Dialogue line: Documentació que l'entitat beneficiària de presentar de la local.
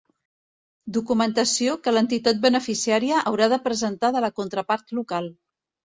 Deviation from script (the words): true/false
true